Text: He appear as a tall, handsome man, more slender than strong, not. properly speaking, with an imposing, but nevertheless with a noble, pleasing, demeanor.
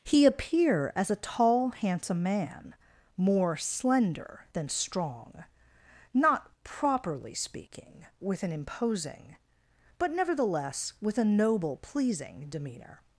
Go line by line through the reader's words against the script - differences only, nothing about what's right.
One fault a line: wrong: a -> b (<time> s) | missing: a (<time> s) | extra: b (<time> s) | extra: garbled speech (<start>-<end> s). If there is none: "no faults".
no faults